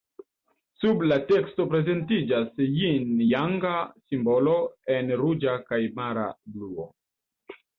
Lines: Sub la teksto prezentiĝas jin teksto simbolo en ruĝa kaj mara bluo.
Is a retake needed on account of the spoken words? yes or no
yes